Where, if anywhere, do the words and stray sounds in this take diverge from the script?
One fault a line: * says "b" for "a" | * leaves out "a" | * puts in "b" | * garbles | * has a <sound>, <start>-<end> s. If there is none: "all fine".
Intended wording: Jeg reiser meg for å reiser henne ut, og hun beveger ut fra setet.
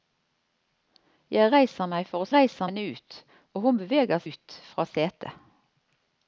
all fine